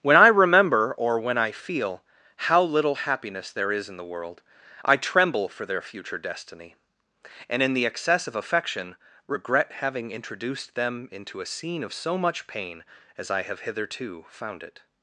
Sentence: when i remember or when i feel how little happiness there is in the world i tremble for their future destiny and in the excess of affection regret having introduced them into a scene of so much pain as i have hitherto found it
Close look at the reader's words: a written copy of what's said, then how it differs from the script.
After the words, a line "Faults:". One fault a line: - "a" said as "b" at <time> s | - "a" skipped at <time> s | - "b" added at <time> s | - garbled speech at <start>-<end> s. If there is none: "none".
when i remember or when i feel how little happiness there is in the world i tremble for their future destiny and in the excess of affection regret having introduced them into a scene of so much pain as i have hitherto found it
Faults:
none